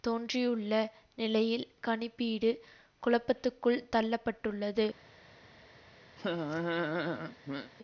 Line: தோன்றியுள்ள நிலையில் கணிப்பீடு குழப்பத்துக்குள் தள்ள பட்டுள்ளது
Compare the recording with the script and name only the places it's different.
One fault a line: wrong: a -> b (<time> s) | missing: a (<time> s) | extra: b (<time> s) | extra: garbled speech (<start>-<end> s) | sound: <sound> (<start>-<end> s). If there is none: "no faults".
sound: laugh (6.2-7.7 s)